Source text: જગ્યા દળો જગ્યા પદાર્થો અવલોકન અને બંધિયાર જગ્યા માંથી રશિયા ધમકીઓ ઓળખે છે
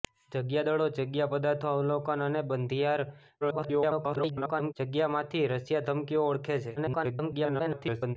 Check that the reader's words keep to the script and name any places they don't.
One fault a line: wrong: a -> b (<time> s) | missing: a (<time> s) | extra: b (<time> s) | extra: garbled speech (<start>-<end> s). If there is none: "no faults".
extra: garbled speech (3.4-4.7 s)
extra: garbled speech (6.8-8.2 s)